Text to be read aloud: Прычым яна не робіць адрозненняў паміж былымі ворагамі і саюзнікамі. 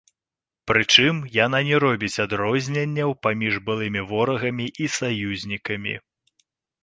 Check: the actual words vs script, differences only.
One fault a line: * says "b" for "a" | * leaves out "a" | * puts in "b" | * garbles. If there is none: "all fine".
all fine